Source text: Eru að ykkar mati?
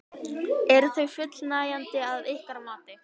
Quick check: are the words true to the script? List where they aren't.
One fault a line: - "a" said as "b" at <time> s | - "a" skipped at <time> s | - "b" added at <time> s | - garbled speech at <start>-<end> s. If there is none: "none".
- "þau fullnægjandi" added at 0.9 s